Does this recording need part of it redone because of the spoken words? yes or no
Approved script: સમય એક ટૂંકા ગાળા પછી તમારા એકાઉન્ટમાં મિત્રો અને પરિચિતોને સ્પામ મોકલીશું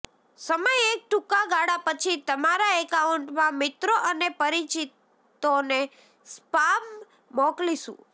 no